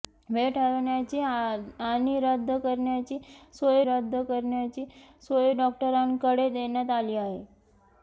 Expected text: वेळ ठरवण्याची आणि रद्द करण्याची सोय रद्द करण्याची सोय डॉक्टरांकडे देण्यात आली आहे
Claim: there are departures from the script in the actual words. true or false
false